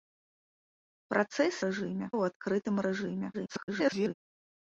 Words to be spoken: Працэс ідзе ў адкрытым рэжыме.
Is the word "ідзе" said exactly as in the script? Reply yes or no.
no